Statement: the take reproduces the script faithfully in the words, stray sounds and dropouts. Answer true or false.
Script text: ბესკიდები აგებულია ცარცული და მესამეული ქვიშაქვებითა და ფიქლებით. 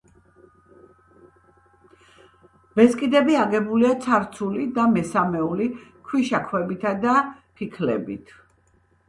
true